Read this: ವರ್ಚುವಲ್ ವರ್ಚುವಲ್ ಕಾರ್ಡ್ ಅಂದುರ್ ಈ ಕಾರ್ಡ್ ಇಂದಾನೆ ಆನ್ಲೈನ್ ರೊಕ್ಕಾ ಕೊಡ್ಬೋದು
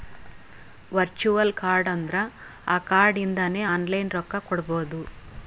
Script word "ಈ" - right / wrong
wrong